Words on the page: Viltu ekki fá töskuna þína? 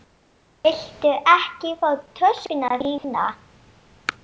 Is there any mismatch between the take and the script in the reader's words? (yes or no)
no